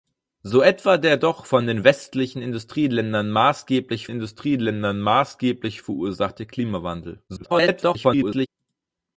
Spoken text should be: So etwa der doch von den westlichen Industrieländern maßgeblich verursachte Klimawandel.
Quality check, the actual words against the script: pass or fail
fail